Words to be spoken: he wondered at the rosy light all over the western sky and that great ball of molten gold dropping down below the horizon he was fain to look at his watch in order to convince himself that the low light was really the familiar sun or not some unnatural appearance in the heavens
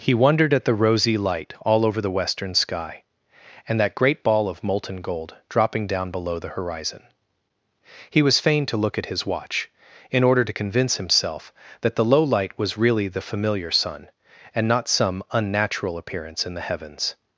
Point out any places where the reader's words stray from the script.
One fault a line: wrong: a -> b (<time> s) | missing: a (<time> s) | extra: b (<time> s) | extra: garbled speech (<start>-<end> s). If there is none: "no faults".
wrong: or -> and (14.5 s)